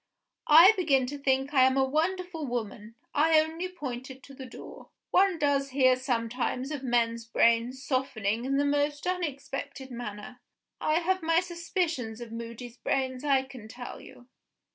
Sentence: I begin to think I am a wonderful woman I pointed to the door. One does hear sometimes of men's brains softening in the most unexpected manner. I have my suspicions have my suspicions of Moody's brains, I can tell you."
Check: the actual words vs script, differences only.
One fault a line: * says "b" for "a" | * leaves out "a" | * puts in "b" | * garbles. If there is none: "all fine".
* puts in "only"
* leaves out "have my suspicions"